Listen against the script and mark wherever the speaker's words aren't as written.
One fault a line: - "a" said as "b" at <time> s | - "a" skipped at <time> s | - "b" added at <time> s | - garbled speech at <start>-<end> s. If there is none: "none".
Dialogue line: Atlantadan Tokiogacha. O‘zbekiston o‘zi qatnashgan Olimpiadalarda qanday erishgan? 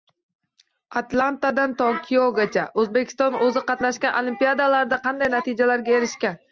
- "natijalarga" added at 5.4 s